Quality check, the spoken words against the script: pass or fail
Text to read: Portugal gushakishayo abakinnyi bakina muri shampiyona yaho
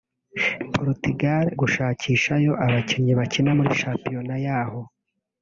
pass